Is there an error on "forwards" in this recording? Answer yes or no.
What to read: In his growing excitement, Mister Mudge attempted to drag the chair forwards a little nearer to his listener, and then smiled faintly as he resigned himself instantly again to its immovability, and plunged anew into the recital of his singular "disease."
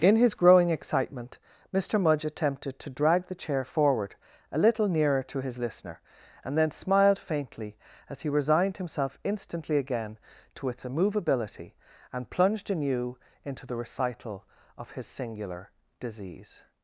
yes